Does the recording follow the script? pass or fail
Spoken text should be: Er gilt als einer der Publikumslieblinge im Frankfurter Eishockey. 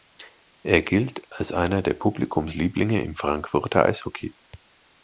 pass